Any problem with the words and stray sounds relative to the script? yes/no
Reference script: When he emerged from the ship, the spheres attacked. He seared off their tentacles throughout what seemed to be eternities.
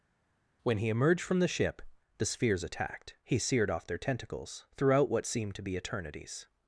no